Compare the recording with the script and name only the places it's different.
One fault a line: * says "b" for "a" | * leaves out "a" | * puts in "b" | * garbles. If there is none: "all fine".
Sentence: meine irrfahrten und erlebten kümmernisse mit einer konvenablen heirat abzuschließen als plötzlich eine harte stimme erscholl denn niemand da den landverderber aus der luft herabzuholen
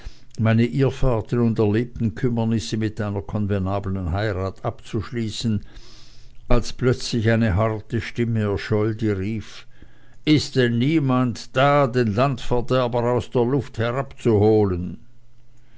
* puts in "die rief ist"